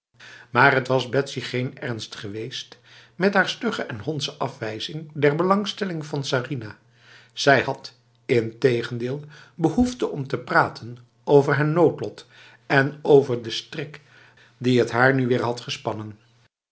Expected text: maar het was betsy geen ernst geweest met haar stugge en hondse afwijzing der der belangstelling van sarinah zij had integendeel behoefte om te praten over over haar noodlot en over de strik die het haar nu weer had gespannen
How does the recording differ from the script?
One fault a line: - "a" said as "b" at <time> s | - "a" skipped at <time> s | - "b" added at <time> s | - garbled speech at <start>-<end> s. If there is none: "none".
- "der" skipped at 5.4 s
- "over" skipped at 11.6 s